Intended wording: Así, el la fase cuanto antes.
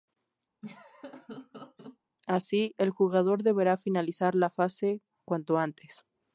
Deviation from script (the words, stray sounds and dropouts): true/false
true